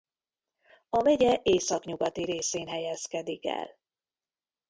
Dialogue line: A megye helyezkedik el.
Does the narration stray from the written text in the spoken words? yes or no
yes